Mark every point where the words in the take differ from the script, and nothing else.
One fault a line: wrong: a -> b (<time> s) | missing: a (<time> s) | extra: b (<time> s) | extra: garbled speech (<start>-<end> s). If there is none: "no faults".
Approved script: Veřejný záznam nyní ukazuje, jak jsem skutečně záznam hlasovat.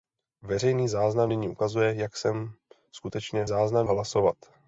no faults